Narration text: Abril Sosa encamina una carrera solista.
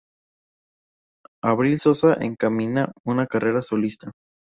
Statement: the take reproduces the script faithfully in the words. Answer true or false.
true